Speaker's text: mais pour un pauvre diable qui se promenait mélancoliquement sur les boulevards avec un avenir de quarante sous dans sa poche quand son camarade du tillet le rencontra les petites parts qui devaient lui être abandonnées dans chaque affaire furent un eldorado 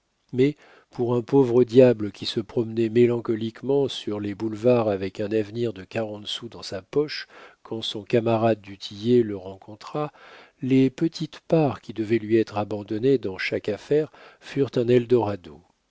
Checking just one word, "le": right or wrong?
right